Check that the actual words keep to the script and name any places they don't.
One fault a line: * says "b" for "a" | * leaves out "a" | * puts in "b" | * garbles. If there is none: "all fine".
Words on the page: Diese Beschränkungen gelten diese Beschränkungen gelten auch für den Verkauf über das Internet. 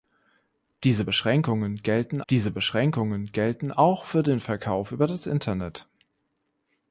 all fine